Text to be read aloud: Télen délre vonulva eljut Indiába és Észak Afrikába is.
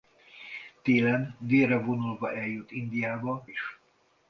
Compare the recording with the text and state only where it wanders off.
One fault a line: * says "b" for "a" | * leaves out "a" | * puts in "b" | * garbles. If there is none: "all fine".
* leaves out "és Észak Afrikába"